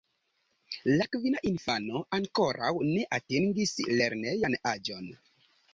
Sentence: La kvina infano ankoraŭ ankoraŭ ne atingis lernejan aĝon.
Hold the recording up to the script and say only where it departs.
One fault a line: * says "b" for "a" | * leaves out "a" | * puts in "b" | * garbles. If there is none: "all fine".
* leaves out "ankoraŭ"